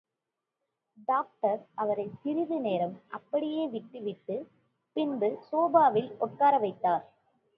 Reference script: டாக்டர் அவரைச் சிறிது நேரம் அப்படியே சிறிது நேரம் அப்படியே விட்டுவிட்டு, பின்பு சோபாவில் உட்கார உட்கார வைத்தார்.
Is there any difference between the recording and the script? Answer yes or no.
yes